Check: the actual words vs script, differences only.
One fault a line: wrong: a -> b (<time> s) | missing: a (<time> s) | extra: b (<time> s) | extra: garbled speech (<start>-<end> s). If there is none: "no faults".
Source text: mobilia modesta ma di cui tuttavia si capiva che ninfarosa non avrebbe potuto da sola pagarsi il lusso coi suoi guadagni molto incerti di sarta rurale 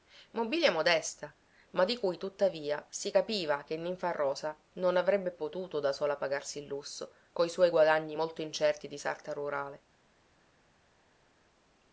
no faults